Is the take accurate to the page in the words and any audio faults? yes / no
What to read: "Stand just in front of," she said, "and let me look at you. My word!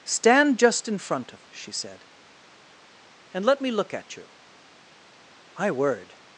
yes